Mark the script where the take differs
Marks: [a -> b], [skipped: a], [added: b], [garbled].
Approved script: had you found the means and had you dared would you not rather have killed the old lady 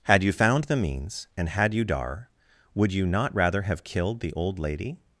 had you found the means and had you [dared -> dar] would you not rather have killed the old lady